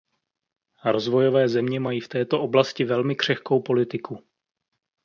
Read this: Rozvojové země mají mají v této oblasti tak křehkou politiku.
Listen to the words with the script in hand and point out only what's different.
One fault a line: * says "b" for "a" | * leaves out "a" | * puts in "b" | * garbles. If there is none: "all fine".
* leaves out "mají"
* says "velmi" for "tak"